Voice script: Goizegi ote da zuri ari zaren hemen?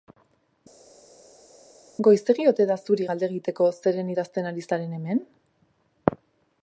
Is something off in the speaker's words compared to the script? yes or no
yes